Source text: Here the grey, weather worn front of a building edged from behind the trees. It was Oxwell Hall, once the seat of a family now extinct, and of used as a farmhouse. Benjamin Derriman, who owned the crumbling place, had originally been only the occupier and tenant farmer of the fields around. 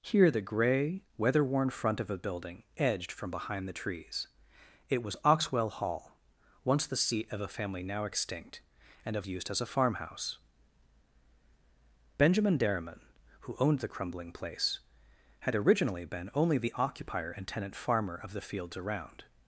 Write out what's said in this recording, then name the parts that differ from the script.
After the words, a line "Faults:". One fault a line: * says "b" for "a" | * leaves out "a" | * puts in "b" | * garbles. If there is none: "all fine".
Here the grey, weather worn front of a building edged from behind the trees. It was Oxwell Hall, once the seat of a family now extinct, and of used as a farmhouse. Benjamin Derriman, who owned the crumbling place, had originally been only the occupier and tenant farmer of the fields around.
Faults:
all fine